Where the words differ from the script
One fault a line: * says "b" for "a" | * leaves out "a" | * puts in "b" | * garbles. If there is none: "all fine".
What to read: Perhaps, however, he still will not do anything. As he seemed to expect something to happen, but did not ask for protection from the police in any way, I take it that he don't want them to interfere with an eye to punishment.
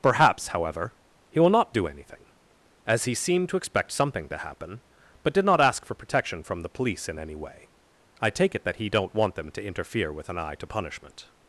* leaves out "still"